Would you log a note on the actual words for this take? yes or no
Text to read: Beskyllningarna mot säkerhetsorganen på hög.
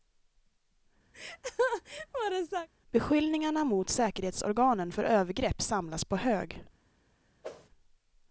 yes